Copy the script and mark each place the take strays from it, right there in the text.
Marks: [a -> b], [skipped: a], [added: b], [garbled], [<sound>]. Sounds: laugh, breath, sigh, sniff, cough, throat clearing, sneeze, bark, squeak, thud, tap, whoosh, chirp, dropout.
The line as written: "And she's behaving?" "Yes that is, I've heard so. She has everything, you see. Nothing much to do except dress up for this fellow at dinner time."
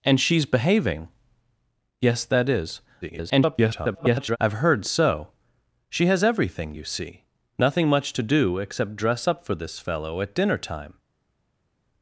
"And she's behaving?" "Yes that is, [garbled] I've heard so. She has everything, you see. Nothing much to do except dress up for this fellow at dinner time."